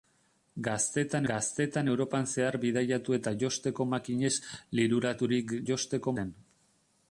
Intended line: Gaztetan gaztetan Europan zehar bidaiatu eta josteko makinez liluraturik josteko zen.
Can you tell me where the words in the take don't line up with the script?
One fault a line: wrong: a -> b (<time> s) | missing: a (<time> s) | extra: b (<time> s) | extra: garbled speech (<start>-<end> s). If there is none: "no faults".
no faults